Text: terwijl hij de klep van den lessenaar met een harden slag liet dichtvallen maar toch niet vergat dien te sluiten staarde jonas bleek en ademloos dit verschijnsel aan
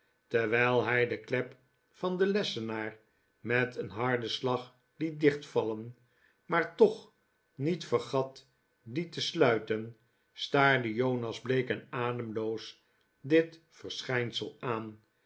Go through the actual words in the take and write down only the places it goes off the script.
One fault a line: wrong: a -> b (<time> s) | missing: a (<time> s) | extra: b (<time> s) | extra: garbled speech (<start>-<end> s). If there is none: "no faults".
no faults